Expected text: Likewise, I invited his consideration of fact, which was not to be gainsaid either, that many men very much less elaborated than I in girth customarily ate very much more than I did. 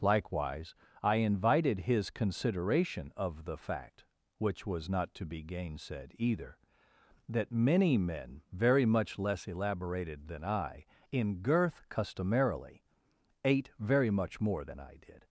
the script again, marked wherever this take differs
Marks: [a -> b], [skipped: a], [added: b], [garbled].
Likewise, I invited his consideration of [added: the] fact, which was not to be gainsaid either, that many men very much less elaborated than I in girth customarily ate very much more than I did.